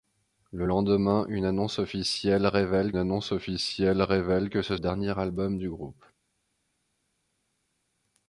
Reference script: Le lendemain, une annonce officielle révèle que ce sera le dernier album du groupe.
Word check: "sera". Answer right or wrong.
wrong